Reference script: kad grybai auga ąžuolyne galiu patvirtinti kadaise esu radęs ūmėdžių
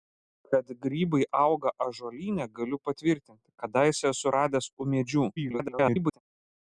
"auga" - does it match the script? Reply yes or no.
yes